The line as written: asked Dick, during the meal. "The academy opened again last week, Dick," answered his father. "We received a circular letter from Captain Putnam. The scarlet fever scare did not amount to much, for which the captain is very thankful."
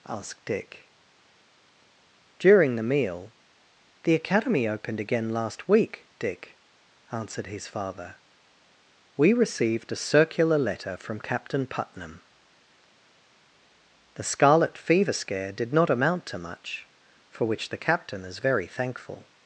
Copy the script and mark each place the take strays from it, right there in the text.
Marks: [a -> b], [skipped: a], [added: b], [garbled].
asked Dick, during the meal. "The academy opened again last week, Dick," answered his father. "We received a circular letter from Captain Putnam. The scarlet fever scare did not amount to much, for which the captain is very thankful."